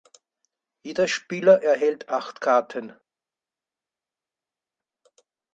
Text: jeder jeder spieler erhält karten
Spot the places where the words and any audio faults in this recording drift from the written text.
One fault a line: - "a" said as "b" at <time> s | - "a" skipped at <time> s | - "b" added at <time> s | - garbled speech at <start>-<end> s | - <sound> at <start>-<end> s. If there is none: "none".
- "jeder" skipped at 1.1 s
- "acht" added at 2.1 s